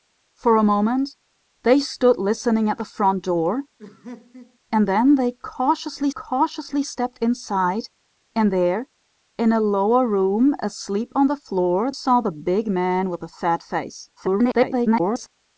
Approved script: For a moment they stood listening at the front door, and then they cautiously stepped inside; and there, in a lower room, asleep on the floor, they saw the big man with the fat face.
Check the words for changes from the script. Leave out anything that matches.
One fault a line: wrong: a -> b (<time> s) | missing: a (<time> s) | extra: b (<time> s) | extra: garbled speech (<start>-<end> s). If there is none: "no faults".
extra: cautiously (6.1 s)
missing: they (11.9 s)
extra: garbled speech (14.2-15.3 s)